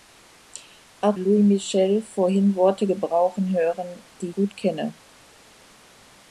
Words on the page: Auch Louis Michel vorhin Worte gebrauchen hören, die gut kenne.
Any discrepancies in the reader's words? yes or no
no